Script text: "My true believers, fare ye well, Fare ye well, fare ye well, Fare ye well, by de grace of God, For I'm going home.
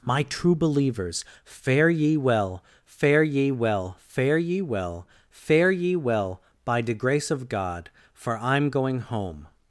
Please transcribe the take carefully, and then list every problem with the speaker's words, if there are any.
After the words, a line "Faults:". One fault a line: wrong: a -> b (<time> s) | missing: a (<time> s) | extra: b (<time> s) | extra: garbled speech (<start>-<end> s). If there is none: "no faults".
"My true believers, fare ye well, Fare ye well, fare ye well, Fare ye well, by de grace of God, For I'm going home.
Faults:
no faults